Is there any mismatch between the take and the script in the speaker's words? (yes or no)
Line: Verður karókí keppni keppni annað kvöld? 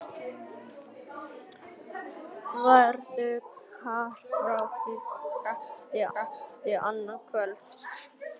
no